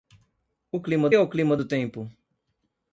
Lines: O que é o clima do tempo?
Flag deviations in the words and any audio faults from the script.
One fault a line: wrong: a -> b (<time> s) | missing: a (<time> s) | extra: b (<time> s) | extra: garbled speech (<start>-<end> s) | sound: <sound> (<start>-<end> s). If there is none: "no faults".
wrong: que -> clima (0.8 s)